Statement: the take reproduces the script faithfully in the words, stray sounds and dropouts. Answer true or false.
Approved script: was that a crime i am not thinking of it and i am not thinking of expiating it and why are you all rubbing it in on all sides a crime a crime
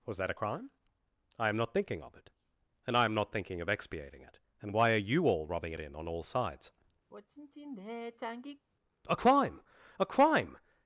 false